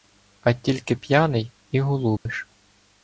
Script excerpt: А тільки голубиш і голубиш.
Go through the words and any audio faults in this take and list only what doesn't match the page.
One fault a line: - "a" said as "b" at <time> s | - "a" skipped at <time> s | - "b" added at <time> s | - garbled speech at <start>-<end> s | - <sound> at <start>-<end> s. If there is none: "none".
- "голубиш" said as "п'яний" at 0.9 s
- dropout at 2.2-2.3 s